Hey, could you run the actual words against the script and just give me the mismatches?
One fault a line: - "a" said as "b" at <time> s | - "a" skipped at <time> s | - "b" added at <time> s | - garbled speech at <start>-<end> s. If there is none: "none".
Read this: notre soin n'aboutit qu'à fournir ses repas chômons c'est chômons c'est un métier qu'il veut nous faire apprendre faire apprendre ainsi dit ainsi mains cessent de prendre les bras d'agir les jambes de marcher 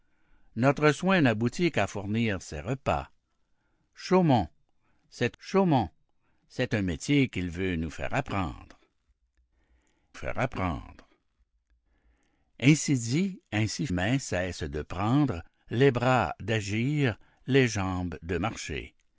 none